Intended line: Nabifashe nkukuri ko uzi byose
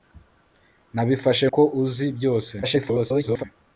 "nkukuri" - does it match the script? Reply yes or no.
no